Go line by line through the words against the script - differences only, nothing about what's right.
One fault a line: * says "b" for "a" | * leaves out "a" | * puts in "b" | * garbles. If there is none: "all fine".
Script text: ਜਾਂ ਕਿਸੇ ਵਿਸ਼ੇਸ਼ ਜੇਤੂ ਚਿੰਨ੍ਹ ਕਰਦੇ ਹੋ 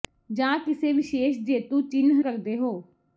all fine